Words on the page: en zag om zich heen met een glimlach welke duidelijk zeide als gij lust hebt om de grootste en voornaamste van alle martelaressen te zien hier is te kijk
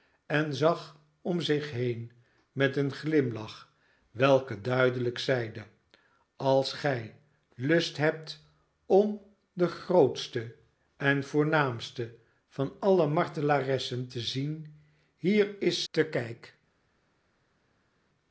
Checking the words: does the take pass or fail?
pass